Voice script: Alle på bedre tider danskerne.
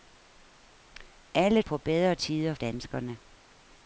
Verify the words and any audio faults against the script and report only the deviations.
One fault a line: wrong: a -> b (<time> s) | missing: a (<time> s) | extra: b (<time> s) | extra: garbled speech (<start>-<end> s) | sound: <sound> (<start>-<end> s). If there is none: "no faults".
no faults